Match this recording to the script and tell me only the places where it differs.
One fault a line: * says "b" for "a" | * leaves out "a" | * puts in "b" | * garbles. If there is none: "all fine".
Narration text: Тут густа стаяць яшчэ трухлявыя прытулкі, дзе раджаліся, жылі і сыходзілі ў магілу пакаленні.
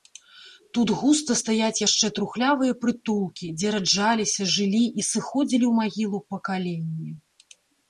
all fine